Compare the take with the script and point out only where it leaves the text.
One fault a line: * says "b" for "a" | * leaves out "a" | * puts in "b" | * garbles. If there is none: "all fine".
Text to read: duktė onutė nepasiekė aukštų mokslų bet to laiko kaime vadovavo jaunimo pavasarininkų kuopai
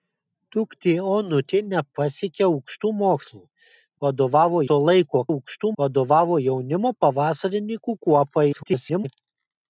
* says "vadovavo" for "bet"
* says "aukštų" for "kaime"
* garbles